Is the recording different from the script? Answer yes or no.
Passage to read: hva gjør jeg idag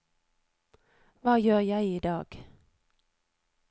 no